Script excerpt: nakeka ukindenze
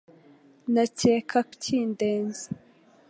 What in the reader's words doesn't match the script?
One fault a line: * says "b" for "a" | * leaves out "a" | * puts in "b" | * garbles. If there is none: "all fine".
all fine